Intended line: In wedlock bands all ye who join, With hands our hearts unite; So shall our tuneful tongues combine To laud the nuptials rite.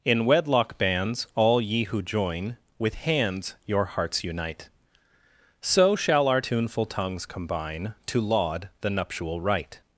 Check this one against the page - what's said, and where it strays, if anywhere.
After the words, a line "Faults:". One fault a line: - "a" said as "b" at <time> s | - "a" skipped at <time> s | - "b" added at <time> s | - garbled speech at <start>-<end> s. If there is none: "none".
In wedlock bands all ye who join, With hands your hearts unite; So shall our tuneful tongues combine To laud the nuptial rite.
Faults:
- "our" said as "your" at 3.7 s
- "nuptials" said as "nuptial" at 8.9 s